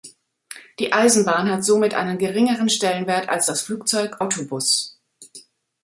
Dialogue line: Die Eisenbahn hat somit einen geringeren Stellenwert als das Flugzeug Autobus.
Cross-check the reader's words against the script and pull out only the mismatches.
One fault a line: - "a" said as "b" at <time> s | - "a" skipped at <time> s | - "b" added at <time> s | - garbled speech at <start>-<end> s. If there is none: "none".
none